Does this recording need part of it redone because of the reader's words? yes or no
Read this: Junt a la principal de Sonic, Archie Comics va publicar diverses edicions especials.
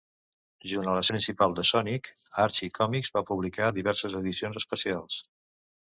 no